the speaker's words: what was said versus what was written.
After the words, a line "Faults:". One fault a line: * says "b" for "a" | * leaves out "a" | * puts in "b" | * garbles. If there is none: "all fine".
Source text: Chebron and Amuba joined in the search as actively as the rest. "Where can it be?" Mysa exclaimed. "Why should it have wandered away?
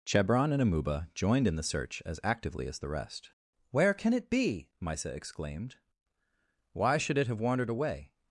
Chebron and Amuba joined in the search as actively as the rest. "Where can it be?" Mysa exclaimed. "Why should it have wandered away?
Faults:
all fine